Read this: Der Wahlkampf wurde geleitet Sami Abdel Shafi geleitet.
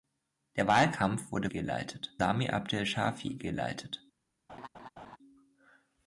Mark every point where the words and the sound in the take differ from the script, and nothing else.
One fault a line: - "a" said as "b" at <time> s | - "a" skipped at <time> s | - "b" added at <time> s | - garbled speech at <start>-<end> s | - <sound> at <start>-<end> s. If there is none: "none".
- laugh at 4.5-5.2 s